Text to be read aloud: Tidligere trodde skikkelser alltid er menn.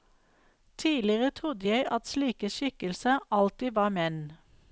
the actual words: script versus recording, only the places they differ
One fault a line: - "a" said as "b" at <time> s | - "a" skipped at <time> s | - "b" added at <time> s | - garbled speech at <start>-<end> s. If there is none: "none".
- "jeg at slike" added at 1.7 s
- "er" said as "var" at 3.7 s